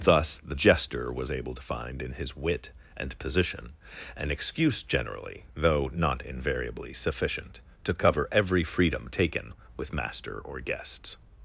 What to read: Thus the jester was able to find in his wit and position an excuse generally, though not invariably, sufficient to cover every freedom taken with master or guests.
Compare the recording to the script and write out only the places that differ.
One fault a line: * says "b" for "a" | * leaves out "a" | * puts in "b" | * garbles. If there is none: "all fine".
all fine